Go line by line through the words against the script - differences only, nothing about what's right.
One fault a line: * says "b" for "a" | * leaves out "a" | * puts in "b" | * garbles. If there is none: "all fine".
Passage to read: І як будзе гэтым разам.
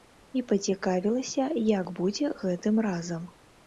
* puts in "пацікавілася"